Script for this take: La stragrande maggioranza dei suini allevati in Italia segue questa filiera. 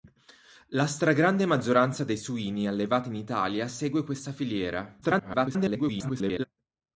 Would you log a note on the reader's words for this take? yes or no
yes